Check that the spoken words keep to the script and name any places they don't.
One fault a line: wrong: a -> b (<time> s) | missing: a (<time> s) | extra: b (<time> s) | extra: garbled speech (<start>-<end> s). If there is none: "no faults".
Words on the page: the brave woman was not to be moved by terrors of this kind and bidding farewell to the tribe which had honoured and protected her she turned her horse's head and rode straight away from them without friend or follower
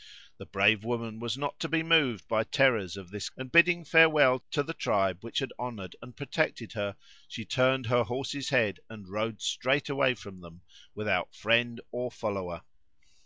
missing: kind (3.3 s)